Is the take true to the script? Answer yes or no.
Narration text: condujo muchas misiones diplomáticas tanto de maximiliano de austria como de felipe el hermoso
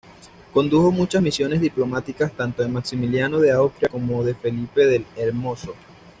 yes